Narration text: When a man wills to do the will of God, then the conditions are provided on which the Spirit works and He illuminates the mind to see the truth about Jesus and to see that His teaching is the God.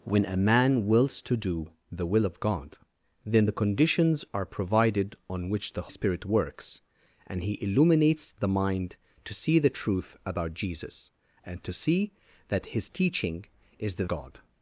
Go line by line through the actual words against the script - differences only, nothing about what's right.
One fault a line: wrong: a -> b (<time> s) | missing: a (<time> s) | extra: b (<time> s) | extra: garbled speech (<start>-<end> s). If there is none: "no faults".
no faults